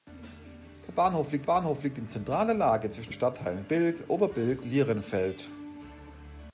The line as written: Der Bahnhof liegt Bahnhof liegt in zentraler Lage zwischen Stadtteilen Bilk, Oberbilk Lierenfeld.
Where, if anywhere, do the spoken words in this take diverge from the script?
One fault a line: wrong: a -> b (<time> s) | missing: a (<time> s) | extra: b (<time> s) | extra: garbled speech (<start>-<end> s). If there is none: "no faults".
no faults